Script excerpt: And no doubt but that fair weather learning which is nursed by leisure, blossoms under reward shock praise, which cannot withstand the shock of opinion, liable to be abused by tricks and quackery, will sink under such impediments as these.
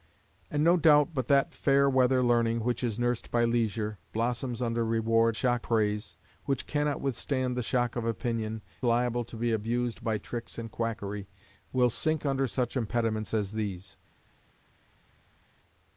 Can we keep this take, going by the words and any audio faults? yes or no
yes